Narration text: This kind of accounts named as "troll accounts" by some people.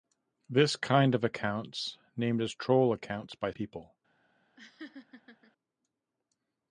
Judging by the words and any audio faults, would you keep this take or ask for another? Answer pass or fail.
fail